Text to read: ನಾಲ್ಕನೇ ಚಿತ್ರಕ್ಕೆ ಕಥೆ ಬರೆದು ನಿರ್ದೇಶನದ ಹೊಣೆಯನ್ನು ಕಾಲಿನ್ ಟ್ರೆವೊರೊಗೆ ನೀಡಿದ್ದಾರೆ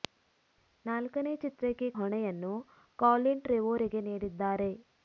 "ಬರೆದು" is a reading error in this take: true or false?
true